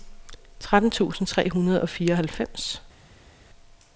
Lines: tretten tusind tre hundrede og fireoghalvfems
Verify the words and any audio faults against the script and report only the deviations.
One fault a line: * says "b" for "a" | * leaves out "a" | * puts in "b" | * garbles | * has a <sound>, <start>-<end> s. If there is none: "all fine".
all fine